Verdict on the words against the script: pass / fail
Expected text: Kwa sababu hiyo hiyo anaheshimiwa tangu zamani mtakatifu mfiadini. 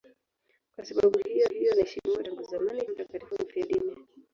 pass